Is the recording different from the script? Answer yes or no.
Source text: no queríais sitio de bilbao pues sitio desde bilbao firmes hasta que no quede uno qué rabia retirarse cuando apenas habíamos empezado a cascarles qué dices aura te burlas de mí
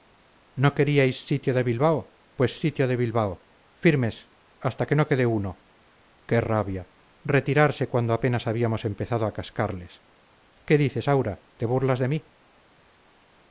yes